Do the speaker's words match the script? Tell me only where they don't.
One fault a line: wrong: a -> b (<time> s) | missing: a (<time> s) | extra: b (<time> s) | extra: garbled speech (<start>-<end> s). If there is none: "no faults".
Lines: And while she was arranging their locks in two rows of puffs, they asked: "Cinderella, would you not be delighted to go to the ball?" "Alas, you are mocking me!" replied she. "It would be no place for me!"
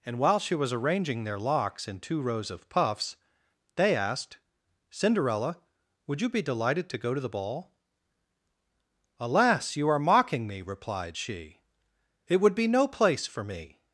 missing: not (6.3 s)